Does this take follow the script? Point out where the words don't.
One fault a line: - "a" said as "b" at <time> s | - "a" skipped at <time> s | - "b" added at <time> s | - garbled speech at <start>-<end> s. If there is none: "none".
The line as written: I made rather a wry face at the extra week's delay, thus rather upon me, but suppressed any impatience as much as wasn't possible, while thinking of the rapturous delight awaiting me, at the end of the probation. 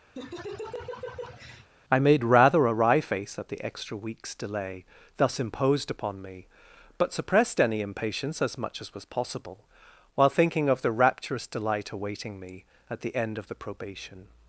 - "rather" said as "imposed" at 5.4 s
- "wasn't" said as "was" at 8.9 s